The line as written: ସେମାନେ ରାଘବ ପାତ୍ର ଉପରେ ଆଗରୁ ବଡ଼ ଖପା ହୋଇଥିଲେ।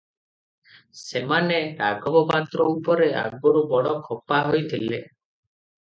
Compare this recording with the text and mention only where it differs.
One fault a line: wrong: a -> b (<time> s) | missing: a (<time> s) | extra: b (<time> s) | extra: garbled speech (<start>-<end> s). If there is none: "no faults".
no faults